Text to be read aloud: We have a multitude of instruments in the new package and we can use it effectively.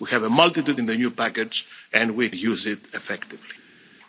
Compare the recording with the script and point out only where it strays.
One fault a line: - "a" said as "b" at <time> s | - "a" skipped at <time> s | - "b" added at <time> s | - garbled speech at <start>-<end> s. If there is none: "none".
- "of instruments" skipped at 0.8 s
- "can" skipped at 2.3 s